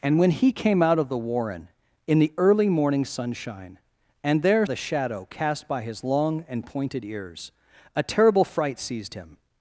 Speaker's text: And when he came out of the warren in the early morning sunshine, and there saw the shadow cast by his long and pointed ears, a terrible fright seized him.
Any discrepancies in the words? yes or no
yes